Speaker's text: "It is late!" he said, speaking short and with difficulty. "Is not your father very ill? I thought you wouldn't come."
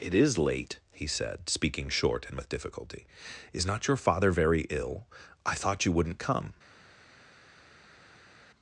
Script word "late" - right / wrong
right